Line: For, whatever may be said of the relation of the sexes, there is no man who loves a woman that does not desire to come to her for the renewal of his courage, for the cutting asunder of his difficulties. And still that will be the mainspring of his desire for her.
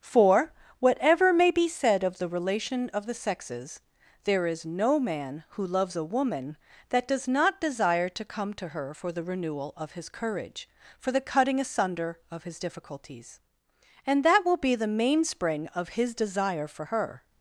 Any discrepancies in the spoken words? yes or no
yes